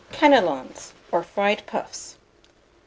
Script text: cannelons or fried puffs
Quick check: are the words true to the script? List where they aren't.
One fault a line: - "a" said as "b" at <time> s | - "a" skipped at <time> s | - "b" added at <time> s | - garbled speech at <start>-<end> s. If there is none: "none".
none